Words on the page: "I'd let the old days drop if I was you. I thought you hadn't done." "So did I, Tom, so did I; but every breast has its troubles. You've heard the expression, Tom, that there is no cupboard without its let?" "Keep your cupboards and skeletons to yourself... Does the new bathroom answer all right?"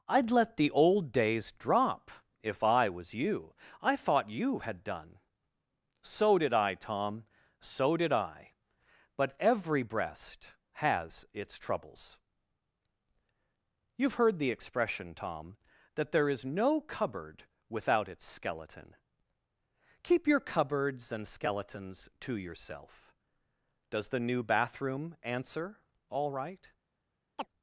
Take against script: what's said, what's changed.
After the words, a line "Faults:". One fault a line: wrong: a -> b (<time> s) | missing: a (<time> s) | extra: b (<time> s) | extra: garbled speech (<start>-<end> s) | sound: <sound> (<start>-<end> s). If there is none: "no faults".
"I'd let the old days drop if I was you. I thought you had done." "So did I, Tom, so did I; but every breast has its troubles. You've heard the expression, Tom, that there is no cupboard without its skeleton?" "Keep your cupboards and skeletons to yourself... Does the new bathroom answer all right?"
Faults:
wrong: hadn't -> had (4.6 s)
wrong: let -> skeleton (18.2 s)
sound: chirp (27.4-27.5 s)